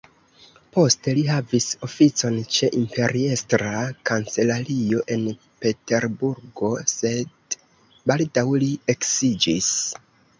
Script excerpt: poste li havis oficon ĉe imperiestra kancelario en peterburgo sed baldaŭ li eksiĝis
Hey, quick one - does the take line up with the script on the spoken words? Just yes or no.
yes